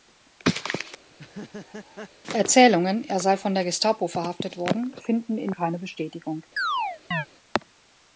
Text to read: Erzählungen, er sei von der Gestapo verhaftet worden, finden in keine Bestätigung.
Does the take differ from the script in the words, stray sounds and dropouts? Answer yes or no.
yes